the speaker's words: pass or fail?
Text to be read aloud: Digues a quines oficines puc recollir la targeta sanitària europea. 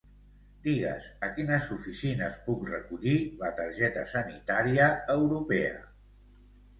pass